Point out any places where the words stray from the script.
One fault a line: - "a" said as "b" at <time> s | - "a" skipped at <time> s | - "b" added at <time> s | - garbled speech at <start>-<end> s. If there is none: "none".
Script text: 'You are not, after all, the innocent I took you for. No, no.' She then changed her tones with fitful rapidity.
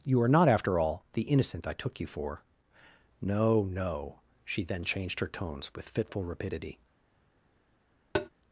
none